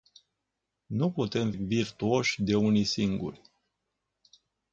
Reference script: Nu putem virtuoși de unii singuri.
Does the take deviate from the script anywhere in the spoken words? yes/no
no